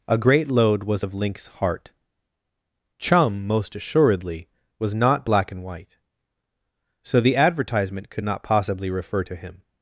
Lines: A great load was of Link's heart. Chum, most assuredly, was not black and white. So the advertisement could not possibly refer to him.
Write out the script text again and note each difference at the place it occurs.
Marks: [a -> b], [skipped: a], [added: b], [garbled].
A great load was of Link's heart. Chum, most assuredly, was not black and white. So the advertisement could not possibly refer to him.